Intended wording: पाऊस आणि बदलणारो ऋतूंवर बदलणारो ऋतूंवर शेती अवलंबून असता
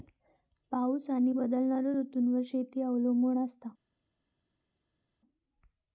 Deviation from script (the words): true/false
true